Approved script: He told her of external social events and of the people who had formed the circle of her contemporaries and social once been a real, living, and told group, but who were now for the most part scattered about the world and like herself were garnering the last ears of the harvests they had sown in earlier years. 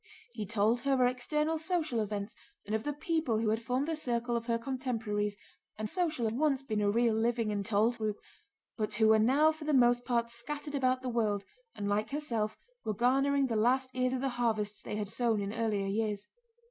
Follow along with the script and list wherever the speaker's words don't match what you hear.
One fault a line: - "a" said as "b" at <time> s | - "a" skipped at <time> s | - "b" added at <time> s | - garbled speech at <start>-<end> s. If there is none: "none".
none